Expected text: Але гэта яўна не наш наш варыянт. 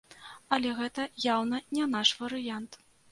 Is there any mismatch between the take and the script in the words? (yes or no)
yes